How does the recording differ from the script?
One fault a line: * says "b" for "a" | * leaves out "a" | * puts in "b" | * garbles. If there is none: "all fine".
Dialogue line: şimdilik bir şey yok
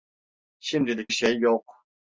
* leaves out "bir"